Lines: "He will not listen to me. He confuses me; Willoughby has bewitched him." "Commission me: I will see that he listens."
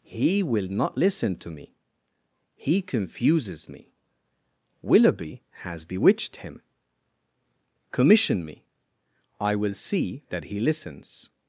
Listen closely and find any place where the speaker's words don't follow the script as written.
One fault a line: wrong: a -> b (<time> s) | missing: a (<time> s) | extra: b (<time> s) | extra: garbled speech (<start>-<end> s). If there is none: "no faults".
no faults